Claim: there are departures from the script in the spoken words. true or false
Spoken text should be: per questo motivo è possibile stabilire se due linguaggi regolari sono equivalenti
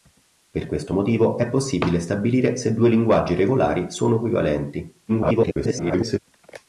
true